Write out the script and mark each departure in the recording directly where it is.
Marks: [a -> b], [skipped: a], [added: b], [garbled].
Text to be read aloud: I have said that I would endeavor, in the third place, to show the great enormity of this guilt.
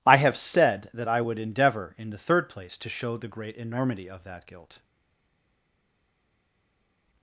I have said that I would endeavor, in the third place, to show the great enormity of [this -> that] guilt.